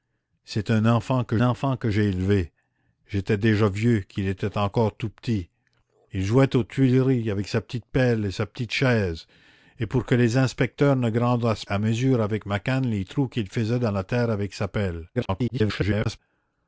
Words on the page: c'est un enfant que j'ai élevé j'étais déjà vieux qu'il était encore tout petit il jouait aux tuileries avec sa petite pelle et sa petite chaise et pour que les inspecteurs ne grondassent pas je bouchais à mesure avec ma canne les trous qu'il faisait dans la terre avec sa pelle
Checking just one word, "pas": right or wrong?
wrong